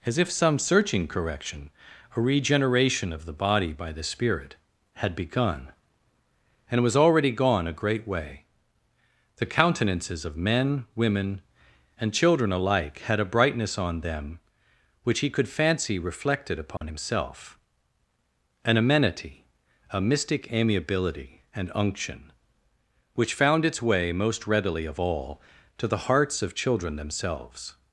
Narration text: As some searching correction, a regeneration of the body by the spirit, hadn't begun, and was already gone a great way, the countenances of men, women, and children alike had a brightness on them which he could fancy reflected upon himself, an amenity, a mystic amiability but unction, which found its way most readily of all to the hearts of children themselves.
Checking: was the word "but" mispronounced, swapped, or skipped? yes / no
yes